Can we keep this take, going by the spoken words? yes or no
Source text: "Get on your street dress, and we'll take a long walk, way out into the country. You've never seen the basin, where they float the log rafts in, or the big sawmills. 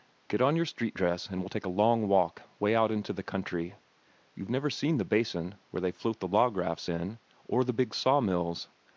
yes